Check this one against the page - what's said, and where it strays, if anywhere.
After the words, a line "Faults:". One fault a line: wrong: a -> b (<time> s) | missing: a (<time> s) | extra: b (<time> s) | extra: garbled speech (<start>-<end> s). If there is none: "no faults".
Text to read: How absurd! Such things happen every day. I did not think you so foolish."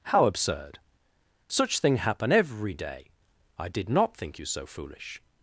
How absurd! Such thing happen every day. I did not think you so foolish."
Faults:
wrong: things -> thing (1.8 s)